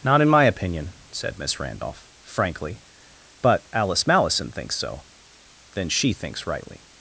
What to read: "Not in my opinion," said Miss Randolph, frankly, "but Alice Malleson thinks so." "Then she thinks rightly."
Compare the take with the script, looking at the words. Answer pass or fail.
pass